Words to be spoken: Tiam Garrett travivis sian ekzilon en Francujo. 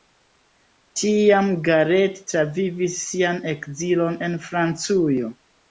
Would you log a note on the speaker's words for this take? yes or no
no